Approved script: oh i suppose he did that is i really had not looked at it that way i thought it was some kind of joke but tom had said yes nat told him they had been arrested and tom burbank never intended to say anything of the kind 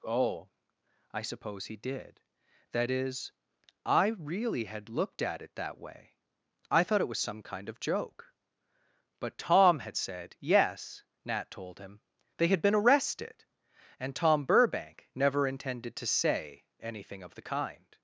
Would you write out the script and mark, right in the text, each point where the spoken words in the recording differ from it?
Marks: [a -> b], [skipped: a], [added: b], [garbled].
oh i suppose he did that is i really had [skipped: not] looked at it that way i thought it was some kind of joke but tom had said yes nat told him they had been arrested and tom burbank never intended to say anything of the kind